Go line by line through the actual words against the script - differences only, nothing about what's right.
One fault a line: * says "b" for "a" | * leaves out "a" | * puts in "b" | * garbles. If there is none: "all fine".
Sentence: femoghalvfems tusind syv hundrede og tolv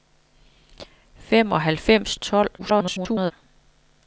* leaves out "tusind syv hundrede"
* garbles